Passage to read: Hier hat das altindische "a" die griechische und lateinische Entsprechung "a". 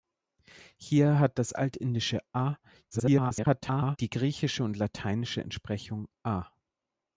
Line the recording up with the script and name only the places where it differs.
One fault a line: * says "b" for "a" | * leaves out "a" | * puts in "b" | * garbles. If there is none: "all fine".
* garbles